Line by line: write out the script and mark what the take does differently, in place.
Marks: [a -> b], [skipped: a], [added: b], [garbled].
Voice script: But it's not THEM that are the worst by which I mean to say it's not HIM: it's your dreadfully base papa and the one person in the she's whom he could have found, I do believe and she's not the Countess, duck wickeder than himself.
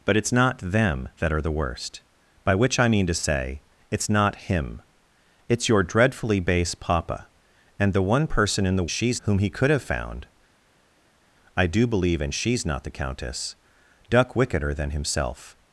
But it's not THEM that are the worst by which I mean to say it's not HIM: it's your dreadfully base papa and the one person in the she's whom he could have found, I do believe and she's not the Countess, duck wickeder than himself.